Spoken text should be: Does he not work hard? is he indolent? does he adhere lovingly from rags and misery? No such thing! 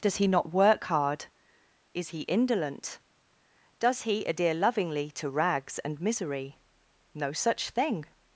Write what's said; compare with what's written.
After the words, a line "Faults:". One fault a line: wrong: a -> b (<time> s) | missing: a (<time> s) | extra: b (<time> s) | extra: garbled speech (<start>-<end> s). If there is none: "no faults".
Does he not work hard? is he indolent? does he adhere lovingly to rags and misery? No such thing!
Faults:
wrong: from -> to (5.1 s)